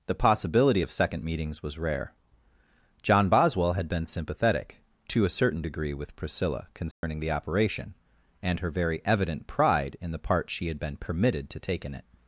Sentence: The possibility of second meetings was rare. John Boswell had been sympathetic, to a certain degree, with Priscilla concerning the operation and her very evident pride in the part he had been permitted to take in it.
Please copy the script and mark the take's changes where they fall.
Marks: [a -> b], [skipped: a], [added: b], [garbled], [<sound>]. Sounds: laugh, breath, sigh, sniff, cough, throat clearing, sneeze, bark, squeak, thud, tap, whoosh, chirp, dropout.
The possibility of second meetings was rare. John Boswell had been sympathetic, to a certain degree, with Priscilla concerning [dropout] the operation and her very evident pride in the part [he -> she] had been permitted to take in it.